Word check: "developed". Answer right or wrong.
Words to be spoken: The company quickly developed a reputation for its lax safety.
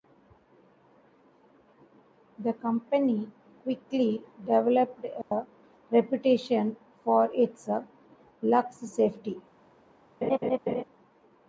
right